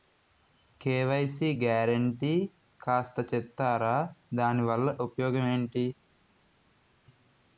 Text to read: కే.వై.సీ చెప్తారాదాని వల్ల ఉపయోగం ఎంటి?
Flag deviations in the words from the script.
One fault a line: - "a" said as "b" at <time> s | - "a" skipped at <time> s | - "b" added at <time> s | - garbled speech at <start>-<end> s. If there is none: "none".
- "గ్యారంటీ కాస్త" added at 1.6 s